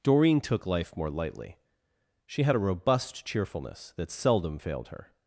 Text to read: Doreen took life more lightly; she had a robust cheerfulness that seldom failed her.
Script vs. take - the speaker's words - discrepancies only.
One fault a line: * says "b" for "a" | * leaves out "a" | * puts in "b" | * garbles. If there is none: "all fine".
all fine